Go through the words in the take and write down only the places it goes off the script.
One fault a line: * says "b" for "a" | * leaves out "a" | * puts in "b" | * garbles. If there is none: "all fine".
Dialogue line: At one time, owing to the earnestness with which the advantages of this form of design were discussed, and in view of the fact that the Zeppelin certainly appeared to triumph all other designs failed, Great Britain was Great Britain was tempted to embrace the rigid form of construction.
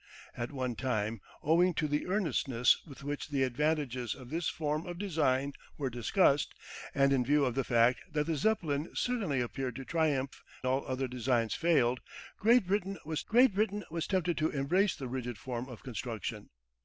all fine